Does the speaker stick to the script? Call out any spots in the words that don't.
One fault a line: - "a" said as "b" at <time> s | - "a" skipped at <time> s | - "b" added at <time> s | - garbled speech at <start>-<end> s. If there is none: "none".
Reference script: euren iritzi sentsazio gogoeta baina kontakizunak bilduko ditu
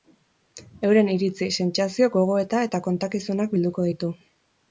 - "baina" said as "eta" at 2.7 s